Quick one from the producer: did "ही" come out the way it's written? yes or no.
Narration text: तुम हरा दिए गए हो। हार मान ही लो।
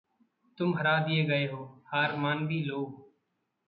no